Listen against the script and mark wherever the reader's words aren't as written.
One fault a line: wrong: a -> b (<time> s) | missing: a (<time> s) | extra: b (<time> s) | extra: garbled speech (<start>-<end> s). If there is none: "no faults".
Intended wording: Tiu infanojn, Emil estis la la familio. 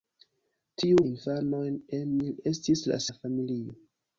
no faults